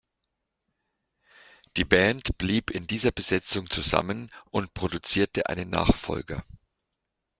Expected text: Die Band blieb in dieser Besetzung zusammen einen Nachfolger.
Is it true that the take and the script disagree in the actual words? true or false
true